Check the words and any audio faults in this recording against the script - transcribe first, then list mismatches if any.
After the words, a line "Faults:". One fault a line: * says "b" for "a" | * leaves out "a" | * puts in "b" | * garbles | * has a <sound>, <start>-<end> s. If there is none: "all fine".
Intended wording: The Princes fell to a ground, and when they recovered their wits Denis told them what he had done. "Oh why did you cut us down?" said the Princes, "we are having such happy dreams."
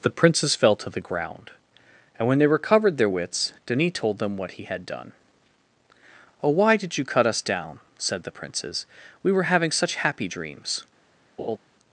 The Princes fell to the ground, and when they recovered their wits Denis told them what he had done. "Oh why did you cut us down?" said the Princes, "we were having such happy dreams."
Faults:
* says "the" for "a"
* says "were" for "are"
* has a laugh, 11.4-11.6 s